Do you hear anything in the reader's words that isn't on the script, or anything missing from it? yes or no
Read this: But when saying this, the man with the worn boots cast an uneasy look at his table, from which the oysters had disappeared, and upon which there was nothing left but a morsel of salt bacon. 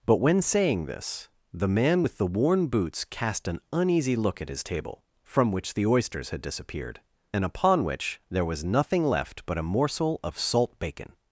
no